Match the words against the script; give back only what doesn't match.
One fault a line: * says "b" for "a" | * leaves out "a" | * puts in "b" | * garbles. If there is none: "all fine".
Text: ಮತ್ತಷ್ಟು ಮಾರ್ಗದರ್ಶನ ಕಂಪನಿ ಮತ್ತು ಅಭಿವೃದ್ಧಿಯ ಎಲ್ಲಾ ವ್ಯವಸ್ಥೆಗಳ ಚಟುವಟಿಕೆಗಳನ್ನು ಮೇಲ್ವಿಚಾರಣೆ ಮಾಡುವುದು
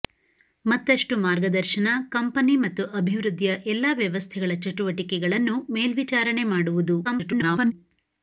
* garbles